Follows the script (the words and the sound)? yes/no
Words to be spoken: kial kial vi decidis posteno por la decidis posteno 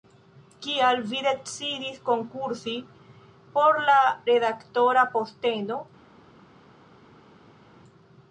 no